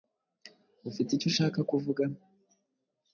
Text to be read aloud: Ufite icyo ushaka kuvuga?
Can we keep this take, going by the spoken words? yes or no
yes